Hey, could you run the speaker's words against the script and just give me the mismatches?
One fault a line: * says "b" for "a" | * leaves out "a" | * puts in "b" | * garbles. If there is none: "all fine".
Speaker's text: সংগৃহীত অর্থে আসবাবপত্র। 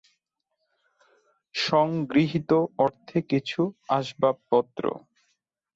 * puts in "কিছু"